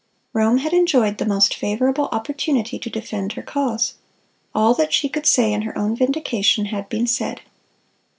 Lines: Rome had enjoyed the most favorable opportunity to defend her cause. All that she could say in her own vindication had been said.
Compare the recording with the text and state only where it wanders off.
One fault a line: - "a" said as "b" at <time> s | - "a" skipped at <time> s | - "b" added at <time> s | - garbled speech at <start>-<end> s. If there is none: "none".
none